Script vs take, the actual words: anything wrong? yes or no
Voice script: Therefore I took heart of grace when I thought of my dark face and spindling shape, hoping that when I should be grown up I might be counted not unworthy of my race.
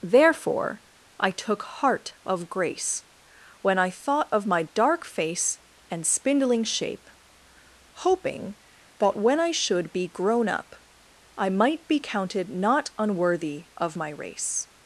no